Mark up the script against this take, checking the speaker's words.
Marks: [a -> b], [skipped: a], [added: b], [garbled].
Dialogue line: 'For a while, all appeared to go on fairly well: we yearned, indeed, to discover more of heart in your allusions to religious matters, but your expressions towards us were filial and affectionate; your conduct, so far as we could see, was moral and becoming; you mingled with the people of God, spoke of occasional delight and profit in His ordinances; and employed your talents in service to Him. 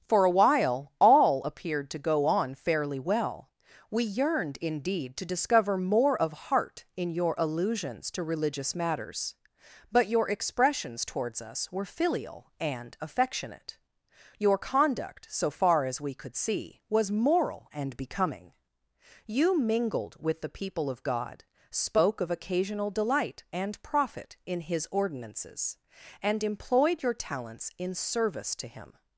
'For a while, all appeared to go on fairly well: we yearned, indeed, to discover more of heart in your allusions to religious matters, but your expressions towards us were filial and affectionate; your conduct, so far as we could see, was moral and becoming; you mingled with the people of God, spoke of occasional delight and profit in His ordinances; and employed your talents in service to Him.